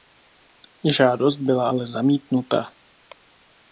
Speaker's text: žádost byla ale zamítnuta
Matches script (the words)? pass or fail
pass